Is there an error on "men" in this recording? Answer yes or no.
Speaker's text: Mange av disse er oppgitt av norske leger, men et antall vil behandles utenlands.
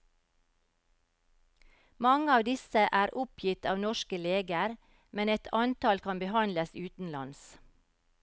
no